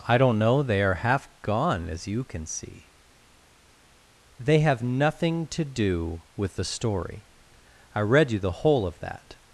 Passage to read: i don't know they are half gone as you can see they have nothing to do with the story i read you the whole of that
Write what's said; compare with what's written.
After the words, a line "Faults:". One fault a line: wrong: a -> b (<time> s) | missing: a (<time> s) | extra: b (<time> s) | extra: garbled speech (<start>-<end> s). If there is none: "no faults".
i don't know they are half gone as you can see they have nothing to do with the story i read you the whole of that
Faults:
no faults